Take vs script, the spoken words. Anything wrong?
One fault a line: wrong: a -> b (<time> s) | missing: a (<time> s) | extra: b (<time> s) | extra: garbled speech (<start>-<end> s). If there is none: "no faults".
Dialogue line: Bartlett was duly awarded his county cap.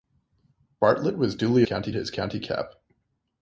wrong: awarded -> county (1.6 s)